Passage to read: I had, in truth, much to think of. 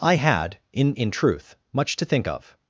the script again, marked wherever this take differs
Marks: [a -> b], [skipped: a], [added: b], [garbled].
I had, in [added: in] truth, much to think of.